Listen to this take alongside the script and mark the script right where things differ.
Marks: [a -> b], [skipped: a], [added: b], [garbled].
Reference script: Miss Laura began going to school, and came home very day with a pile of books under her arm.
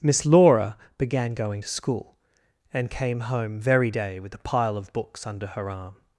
Miss Laura began going to school, and came home very day with a pile of books under her arm.